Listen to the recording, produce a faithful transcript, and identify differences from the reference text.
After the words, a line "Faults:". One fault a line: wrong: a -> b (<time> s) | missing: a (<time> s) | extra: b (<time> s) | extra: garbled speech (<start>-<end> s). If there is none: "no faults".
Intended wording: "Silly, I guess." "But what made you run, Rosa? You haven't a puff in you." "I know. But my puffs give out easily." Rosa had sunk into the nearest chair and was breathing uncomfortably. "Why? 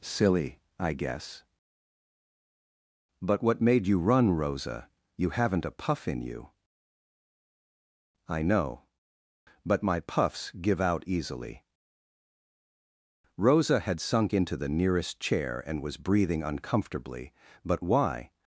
"Silly, I guess." "But what made you run, Rosa? You haven't a puff in you." "I know. But my puffs give out easily." Rosa had sunk into the nearest chair and was breathing uncomfortably. "But why?
Faults:
extra: But (17.7 s)